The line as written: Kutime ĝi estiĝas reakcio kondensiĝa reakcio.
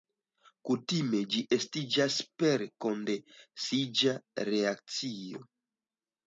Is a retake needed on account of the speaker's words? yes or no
yes